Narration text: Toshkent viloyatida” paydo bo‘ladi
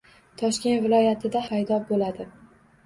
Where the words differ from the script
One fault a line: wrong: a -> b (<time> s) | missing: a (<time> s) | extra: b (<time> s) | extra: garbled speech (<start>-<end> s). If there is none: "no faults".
no faults